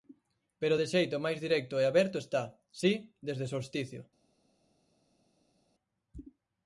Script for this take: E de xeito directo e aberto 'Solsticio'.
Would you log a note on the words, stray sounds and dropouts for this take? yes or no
yes